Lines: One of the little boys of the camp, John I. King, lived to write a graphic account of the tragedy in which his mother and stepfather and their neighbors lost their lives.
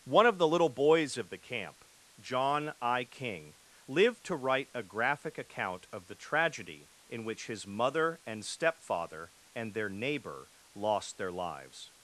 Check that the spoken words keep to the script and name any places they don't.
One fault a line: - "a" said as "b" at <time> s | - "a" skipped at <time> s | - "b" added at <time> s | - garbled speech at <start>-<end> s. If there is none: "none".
- "neighbors" said as "neighbor" at 9.9 s